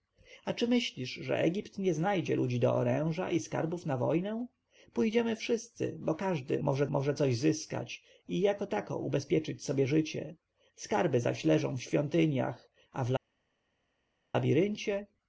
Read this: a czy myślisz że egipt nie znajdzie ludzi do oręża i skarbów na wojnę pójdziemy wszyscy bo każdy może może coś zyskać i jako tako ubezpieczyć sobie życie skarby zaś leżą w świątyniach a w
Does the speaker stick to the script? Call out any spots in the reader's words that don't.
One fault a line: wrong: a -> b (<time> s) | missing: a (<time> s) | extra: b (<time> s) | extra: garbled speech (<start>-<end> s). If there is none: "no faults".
no faults